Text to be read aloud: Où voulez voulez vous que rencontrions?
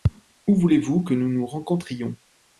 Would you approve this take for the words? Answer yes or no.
no